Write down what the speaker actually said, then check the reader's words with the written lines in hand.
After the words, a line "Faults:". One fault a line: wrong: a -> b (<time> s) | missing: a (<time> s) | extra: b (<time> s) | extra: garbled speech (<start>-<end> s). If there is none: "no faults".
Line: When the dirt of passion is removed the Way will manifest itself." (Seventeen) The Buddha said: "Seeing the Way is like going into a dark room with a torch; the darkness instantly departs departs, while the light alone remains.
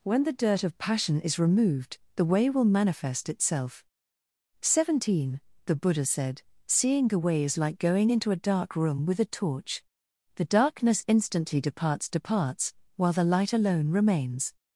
When the dirt of passion is removed the Way will manifest itself." (Seventeen) The Buddha said: "Seeing the Way is like going into a dark room with a torch; the darkness instantly departs departs, while the light alone remains.
Faults:
no faults